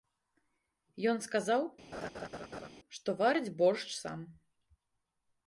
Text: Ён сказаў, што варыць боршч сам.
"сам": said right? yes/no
yes